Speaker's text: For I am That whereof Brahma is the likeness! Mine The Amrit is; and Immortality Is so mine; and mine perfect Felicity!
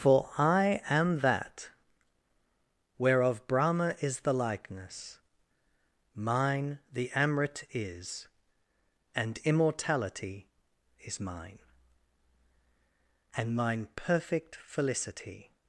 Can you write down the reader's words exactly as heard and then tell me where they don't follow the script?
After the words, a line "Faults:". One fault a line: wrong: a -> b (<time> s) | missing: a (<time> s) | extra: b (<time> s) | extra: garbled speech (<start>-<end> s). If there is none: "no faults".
For I am That whereof Brahma is the likeness! Mine The Amrit is; and Immortality Is mine; and mine perfect Felicity!
Faults:
missing: so (11.2 s)